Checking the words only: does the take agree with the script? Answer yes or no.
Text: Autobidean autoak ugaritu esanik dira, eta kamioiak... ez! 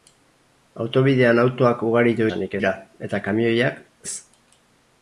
yes